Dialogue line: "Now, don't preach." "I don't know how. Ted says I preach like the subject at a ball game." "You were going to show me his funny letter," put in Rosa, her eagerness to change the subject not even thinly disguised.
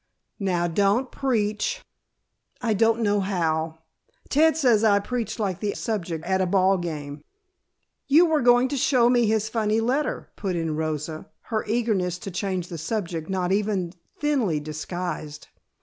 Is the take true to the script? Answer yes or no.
yes